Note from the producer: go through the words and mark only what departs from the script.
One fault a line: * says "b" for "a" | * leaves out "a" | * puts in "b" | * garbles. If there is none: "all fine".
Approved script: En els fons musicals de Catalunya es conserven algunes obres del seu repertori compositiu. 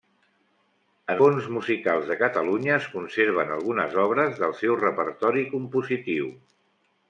* leaves out "els"